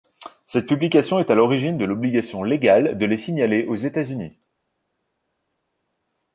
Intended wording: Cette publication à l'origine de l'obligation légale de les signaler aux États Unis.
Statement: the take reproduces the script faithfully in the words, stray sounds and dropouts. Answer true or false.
false